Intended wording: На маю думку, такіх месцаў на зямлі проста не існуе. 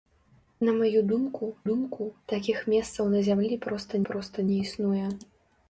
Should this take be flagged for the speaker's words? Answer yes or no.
yes